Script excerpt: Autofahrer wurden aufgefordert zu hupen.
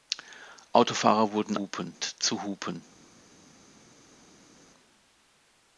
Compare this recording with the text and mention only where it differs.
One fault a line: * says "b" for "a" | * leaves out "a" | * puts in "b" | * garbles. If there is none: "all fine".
* says "hupen" for "aufgefordert"